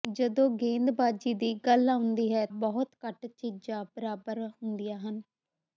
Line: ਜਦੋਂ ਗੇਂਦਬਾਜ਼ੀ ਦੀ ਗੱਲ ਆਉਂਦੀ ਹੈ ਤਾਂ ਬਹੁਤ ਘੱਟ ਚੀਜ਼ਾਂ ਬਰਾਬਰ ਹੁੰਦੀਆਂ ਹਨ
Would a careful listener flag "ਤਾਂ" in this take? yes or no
yes